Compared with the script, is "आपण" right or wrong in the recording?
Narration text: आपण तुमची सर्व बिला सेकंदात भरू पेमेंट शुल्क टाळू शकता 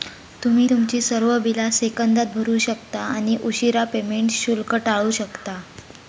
wrong